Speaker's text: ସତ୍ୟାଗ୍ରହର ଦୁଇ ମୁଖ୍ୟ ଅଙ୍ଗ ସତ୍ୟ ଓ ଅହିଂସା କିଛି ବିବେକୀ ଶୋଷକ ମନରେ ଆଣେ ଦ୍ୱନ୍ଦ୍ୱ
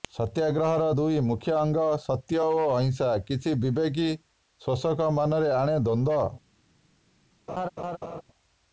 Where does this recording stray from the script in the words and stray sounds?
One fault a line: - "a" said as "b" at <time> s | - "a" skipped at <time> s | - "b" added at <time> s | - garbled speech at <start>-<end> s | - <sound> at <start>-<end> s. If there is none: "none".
- laugh at 7.5-8.2 s